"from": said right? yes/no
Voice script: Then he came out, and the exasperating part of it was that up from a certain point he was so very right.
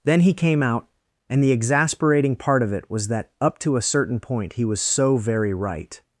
no